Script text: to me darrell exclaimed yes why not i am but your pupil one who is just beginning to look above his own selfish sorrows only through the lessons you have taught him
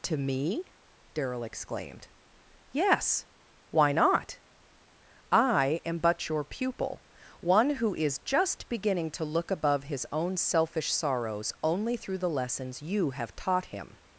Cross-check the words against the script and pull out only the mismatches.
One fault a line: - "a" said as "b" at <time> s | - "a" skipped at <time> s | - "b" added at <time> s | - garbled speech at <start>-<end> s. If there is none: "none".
none